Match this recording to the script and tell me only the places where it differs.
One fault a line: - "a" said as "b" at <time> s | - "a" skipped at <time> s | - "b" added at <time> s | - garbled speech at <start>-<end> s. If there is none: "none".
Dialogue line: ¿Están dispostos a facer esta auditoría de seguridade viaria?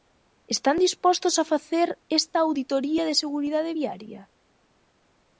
none